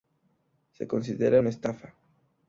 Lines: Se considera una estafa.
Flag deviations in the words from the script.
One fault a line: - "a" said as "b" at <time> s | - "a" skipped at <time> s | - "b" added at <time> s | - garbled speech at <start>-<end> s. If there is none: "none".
none